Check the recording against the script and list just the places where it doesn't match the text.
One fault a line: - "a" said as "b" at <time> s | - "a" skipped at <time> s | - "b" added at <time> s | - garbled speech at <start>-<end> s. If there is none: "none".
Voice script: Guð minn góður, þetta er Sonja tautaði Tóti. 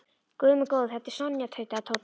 none